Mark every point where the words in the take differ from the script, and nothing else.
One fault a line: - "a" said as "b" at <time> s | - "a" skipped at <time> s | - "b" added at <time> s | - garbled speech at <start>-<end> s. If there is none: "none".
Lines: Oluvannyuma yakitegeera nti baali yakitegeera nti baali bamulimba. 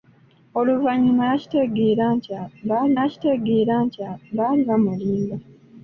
none